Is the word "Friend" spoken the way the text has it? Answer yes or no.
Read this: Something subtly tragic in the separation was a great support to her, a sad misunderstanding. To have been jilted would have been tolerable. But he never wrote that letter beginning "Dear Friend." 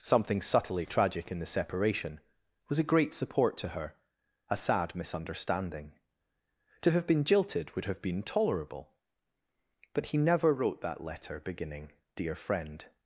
yes